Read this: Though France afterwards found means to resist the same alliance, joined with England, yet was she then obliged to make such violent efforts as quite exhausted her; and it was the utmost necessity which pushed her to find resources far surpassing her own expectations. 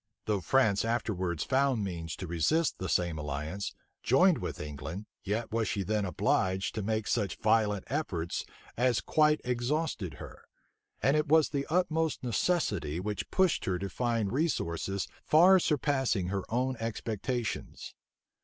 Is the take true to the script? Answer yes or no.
yes